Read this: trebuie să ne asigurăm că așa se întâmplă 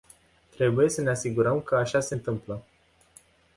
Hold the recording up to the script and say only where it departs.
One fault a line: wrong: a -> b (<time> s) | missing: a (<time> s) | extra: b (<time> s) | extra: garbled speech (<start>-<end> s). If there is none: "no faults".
no faults